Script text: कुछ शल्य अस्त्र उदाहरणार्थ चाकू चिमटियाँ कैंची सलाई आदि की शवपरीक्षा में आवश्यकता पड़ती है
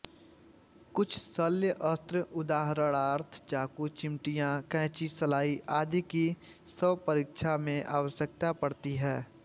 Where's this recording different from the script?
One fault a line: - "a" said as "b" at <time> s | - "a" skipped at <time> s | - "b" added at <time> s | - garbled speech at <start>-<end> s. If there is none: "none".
none